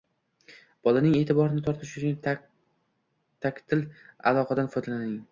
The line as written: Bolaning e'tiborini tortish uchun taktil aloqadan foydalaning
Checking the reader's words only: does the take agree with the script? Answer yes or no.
yes